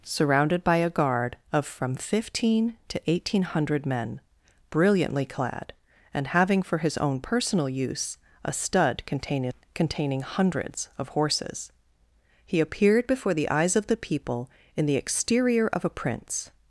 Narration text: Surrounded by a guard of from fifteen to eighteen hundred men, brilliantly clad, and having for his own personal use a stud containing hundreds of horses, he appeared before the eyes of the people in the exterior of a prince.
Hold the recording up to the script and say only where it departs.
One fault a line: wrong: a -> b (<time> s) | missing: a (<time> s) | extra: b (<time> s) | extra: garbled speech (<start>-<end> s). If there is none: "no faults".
extra: containing (9.8 s)